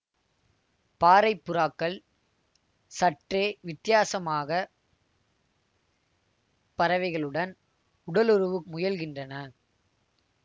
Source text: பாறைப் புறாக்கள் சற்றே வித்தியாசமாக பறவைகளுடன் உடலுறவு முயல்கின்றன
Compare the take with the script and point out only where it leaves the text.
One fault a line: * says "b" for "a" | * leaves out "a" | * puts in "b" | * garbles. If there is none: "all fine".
all fine